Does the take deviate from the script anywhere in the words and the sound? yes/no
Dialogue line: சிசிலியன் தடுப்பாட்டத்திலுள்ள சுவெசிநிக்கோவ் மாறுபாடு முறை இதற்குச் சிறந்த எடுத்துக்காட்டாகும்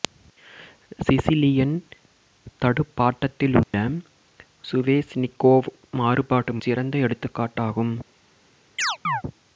yes